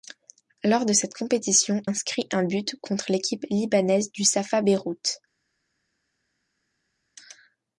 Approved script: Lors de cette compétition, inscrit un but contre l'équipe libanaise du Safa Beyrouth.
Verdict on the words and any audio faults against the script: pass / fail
pass